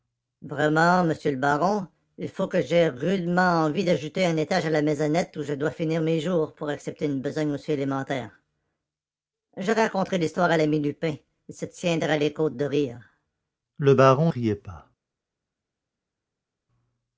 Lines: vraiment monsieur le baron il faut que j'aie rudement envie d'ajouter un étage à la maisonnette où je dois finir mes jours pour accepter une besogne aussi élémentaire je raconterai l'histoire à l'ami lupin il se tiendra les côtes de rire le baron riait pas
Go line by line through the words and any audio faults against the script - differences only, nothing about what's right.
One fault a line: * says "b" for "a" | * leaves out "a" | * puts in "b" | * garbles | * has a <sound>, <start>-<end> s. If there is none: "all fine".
all fine